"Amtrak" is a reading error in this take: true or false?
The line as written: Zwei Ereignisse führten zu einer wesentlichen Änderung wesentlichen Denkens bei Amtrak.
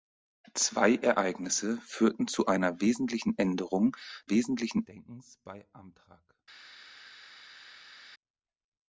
false